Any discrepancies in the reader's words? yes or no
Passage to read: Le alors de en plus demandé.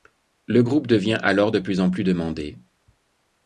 yes